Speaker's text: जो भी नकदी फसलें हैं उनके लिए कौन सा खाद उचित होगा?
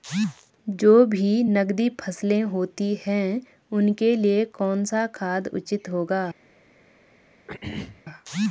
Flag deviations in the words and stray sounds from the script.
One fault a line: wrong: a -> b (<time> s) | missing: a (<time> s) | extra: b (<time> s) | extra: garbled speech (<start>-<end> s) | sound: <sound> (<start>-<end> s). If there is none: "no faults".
extra: होती (2.5 s)
sound: throat clearing (7.5-8.0 s)